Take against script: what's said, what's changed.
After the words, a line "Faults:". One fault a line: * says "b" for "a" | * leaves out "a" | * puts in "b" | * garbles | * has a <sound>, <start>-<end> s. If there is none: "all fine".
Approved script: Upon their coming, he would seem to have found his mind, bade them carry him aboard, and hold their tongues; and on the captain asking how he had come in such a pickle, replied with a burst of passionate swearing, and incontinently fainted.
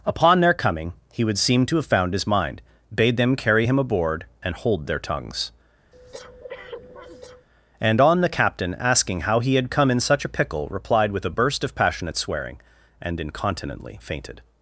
Upon their coming, he would seem to have found his mind, bade them carry him aboard, and hold their tongues; and on the captain asking how he had come in such a pickle, replied with a burst of passionate swearing, and incontinently fainted.
Faults:
* has a breath, 5.9-7.5 s